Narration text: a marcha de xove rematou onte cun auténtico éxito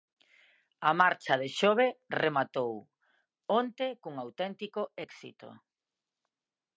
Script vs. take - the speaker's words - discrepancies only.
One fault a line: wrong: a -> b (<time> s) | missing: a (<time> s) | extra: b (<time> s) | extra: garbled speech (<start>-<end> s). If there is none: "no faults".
no faults